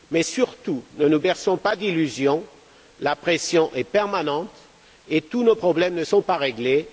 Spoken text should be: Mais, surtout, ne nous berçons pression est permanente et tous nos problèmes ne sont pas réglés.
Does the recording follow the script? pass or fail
fail